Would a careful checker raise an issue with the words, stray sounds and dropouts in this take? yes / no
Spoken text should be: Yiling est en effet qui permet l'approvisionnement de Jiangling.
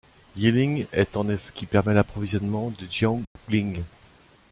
yes